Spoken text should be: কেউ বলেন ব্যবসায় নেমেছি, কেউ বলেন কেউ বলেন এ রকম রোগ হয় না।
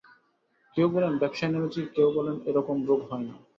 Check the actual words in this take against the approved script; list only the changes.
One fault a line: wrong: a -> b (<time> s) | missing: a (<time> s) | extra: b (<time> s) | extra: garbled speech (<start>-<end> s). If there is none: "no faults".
missing: কেউ বলেন (2.4 s)